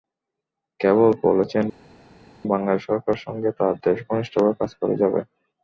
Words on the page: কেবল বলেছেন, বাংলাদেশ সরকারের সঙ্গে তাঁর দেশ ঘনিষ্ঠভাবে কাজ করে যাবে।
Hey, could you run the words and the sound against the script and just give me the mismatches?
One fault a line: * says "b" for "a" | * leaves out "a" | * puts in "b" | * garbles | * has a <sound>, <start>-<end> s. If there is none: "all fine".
all fine